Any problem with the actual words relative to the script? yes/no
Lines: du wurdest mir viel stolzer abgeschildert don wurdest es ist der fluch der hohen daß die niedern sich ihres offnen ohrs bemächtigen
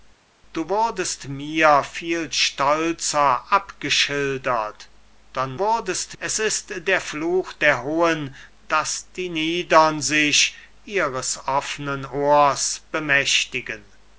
no